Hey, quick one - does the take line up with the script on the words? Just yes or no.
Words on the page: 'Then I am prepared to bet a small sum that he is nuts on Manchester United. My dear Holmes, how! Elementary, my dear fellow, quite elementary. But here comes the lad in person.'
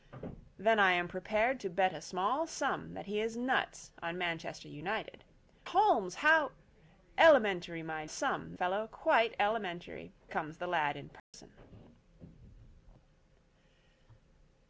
no